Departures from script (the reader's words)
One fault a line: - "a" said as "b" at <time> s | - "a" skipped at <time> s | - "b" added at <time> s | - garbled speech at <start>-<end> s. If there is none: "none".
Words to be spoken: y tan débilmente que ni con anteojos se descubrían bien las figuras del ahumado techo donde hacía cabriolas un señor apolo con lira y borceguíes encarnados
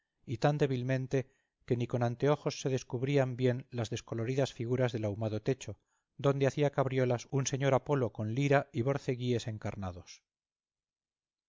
- "descoloridas" added at 3.9 s